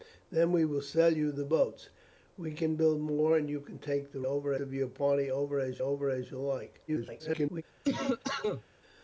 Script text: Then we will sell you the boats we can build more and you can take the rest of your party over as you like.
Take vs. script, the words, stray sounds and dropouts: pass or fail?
fail